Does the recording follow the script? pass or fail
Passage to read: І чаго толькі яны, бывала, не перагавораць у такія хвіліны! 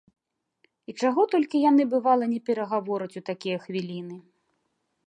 pass